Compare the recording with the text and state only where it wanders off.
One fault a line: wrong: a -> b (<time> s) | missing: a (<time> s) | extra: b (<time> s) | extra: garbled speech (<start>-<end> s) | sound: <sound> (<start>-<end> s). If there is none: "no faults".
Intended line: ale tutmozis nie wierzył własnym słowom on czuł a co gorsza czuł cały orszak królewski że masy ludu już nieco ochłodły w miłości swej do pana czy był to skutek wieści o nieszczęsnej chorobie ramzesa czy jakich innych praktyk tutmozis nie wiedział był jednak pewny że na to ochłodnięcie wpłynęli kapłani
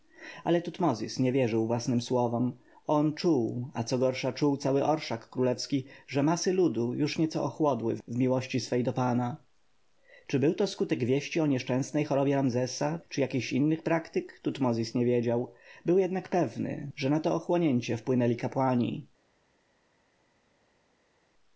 no faults